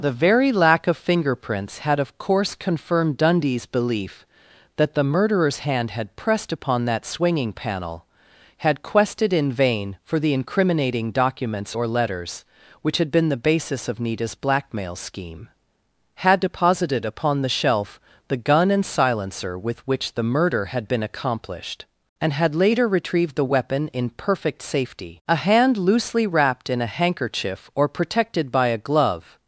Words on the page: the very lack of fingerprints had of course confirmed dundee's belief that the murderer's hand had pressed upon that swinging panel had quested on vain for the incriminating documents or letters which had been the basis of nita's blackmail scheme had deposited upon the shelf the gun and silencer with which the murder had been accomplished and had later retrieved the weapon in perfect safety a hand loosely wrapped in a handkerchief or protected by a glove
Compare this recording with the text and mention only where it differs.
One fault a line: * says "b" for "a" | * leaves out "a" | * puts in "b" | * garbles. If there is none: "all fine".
* says "in" for "on"